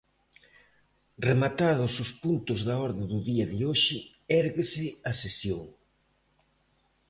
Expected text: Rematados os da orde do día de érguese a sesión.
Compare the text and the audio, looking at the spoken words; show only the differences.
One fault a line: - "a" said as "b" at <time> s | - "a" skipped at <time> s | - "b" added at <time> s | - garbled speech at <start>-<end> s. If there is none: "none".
- "puntos" added at 2.2 s
- "hoxe" added at 3.7 s